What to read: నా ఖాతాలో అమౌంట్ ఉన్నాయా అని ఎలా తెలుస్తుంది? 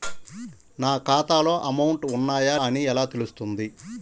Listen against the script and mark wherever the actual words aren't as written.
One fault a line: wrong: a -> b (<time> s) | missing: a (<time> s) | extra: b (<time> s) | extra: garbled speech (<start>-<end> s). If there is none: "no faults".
no faults